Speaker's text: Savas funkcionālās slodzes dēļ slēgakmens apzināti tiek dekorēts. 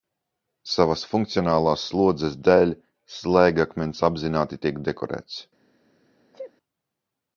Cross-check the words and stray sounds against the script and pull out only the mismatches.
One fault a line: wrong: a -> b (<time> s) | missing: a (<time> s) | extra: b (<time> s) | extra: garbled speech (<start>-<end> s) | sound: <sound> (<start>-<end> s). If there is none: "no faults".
sound: sneeze (6.3-6.5 s)